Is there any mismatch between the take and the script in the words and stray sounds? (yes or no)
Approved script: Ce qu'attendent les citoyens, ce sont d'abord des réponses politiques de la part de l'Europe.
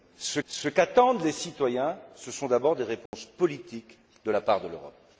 yes